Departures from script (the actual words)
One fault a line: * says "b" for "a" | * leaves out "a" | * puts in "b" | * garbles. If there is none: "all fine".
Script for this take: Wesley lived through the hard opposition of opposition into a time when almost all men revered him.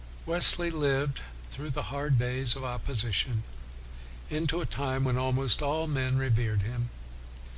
* says "days" for "opposition"